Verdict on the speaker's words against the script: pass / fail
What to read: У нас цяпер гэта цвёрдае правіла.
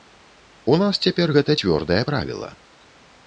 pass